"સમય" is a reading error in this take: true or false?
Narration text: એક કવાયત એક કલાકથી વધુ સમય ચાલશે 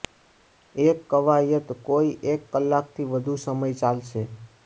false